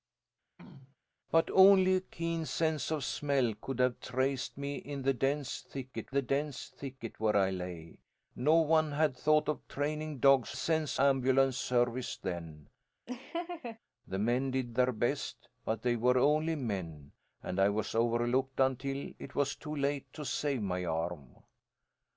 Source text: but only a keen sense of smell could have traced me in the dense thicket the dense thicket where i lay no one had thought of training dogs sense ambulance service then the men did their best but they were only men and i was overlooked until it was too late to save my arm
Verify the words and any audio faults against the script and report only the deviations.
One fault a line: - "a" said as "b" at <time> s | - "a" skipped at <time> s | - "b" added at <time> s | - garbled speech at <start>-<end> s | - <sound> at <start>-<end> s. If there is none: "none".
- throat clearing at 0.6-1.0 s
- laugh at 13.1-13.8 s